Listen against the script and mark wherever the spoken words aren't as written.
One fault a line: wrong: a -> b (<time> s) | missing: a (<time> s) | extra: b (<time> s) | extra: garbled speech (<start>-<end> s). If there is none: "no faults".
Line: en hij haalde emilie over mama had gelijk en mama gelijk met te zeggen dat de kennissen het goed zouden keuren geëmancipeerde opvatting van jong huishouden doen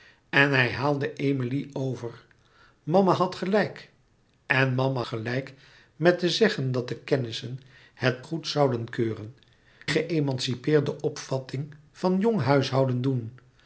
no faults